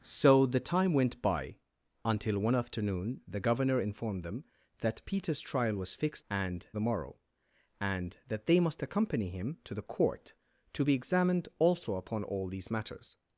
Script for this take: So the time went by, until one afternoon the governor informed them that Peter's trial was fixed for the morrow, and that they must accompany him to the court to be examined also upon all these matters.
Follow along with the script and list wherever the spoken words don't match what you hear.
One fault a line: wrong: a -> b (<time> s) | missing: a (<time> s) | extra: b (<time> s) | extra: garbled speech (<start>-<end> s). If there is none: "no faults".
wrong: for -> and (6.3 s)